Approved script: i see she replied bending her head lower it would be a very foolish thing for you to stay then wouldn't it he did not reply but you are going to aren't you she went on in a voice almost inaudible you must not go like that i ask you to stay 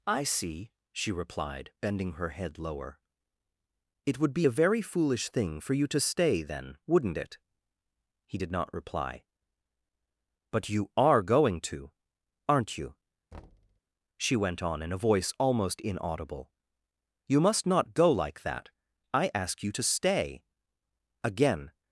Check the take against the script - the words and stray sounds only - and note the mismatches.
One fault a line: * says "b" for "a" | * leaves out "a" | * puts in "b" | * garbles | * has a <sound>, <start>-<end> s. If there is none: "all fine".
* has a thud, 13.3-13.8 s
* puts in "again"